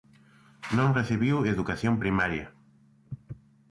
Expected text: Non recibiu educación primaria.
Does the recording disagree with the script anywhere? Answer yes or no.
no